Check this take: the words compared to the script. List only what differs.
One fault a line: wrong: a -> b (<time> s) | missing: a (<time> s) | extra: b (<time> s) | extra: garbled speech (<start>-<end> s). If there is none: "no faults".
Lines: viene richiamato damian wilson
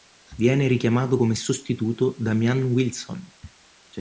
extra: come sostituto (1.2 s)